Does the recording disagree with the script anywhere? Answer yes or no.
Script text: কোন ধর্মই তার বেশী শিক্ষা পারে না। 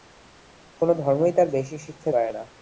no